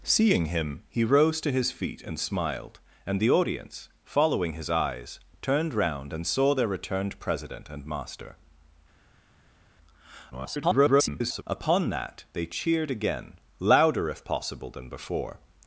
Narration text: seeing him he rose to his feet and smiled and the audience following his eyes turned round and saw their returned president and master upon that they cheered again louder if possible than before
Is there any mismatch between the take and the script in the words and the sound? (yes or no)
yes